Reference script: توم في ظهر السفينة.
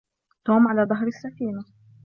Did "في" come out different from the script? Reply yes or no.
yes